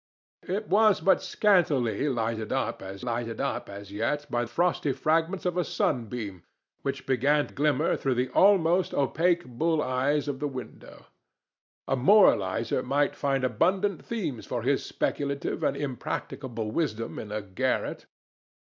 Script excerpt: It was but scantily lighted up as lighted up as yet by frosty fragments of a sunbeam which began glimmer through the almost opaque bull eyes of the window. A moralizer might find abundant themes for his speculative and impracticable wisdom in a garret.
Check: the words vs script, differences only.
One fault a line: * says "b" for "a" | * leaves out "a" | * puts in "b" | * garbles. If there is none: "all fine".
all fine